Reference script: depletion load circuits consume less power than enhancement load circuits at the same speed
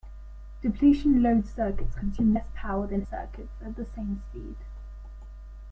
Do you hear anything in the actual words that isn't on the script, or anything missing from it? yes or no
yes